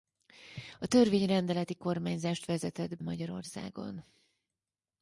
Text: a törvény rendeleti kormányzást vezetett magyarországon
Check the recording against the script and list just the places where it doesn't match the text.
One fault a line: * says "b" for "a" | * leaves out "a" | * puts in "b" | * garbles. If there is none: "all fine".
all fine